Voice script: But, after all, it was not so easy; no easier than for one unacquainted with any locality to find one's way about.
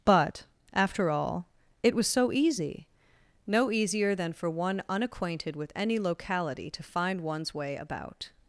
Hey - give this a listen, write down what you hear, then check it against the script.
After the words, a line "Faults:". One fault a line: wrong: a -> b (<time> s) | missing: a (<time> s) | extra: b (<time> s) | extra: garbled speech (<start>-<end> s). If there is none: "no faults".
But, after all, it was so easy; no easier than for one unacquainted with any locality to find one's way about.
Faults:
missing: not (2.1 s)